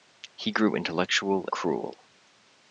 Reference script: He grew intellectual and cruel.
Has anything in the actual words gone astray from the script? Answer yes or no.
yes